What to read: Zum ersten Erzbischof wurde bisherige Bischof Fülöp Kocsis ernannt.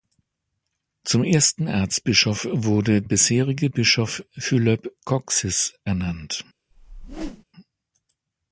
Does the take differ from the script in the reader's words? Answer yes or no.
no